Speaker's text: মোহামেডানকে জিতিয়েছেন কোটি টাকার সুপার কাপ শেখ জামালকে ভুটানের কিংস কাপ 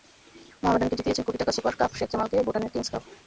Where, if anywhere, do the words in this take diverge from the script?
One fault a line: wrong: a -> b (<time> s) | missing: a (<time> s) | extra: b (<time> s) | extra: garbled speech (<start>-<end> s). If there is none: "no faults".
no faults